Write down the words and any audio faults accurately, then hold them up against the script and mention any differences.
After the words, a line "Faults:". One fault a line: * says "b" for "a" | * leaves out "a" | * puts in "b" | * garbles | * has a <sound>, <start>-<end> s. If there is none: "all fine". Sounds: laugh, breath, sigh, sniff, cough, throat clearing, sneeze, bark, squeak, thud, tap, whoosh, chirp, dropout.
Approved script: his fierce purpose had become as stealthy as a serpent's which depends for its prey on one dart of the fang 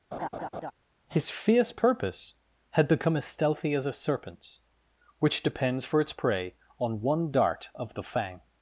his fierce purpose had become as stealthy as a serpent's which depends for its prey on one dart of the fang
Faults:
* has a laugh, 0.1-0.7 s